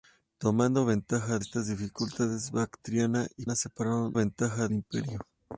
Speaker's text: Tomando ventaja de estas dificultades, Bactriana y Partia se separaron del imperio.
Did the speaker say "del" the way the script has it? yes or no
no